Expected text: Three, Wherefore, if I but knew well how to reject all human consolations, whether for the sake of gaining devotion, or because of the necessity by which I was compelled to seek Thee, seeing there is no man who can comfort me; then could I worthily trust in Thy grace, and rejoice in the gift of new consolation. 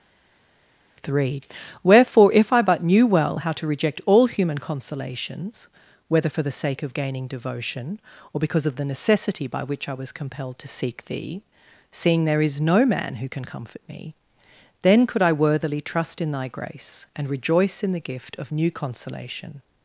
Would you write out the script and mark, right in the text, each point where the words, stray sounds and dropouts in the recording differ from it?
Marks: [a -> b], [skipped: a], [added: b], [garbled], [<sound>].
Three, Wherefore, if I but knew well how to reject all human consolations, whether for the sake of gaining devotion, or because of the necessity by which I was compelled to seek Thee, seeing there is no man who can comfort me; then could I worthily trust in Thy grace, and rejoice in the gift of new consolation.